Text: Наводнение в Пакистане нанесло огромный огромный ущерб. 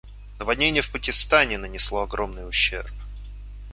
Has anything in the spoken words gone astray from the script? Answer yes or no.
yes